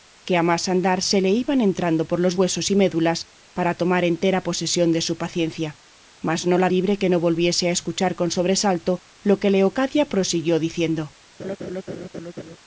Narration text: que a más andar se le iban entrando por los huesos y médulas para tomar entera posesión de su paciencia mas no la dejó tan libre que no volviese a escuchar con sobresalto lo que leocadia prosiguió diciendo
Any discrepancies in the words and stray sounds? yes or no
yes